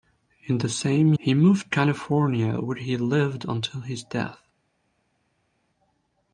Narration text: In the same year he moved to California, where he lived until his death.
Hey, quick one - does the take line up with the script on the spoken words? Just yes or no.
no